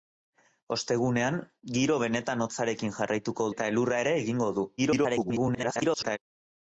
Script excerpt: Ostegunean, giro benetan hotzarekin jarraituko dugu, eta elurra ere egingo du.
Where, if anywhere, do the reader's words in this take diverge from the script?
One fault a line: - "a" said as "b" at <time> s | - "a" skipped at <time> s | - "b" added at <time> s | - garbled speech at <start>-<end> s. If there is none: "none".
- "dugu" skipped at 3.5 s
- garbled speech at 4.8-6.2 s